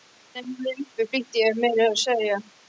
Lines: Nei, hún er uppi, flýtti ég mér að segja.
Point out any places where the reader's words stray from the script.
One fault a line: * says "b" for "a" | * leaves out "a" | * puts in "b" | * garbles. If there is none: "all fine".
all fine